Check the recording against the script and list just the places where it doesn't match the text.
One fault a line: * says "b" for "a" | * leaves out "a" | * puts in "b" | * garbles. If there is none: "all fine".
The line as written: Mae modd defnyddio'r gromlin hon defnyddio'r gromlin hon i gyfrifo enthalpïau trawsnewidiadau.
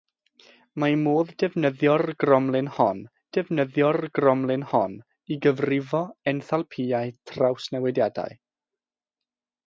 all fine